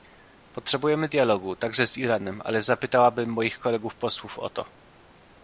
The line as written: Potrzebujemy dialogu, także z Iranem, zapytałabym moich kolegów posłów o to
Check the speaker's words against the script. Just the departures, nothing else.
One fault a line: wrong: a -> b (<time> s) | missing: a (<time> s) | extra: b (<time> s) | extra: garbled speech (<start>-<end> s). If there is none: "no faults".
extra: ale (2.4 s)